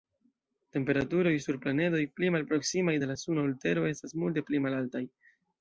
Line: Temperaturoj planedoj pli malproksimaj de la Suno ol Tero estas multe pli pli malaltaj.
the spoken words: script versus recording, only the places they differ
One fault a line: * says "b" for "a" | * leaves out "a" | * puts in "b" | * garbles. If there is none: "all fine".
* puts in "sur"
* leaves out "pli"